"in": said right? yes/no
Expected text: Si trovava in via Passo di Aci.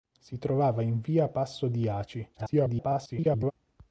yes